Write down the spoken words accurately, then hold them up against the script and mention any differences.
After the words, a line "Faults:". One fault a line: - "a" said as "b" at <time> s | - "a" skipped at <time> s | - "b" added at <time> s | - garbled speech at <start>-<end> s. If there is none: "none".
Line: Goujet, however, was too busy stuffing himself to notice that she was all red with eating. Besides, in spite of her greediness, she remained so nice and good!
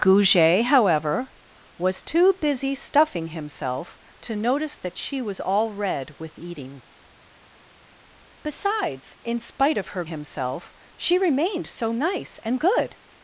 Goujet, however, was too busy stuffing himself to notice that she was all red with eating. Besides, in spite of her himself, she remained so nice and good!
Faults:
- "greediness" said as "himself" at 10.0 s